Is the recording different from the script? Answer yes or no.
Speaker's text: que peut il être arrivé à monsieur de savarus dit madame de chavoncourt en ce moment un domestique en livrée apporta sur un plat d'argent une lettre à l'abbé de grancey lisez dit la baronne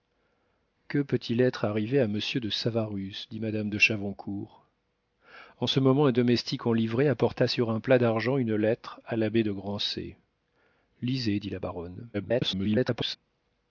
yes